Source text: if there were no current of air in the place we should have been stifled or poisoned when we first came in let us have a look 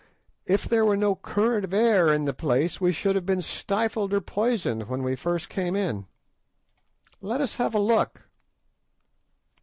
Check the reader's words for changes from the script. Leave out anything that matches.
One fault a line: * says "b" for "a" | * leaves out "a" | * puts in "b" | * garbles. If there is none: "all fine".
all fine